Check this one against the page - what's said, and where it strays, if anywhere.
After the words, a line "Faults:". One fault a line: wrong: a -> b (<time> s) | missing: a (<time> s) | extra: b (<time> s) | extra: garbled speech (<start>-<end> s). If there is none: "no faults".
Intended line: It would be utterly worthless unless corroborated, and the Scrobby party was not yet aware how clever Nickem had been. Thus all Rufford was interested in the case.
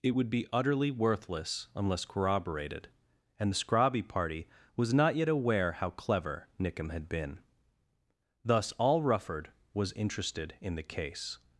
It would be utterly worthless unless corroborated, and the Scrobby party was not yet aware how clever Nickem had been. Thus all Rufford was interested in the case.
Faults:
no faults